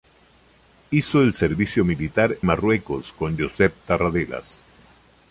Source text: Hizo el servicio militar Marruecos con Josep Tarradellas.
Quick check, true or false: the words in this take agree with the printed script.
true